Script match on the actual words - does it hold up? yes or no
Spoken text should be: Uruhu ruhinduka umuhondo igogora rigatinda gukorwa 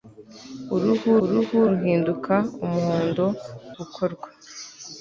no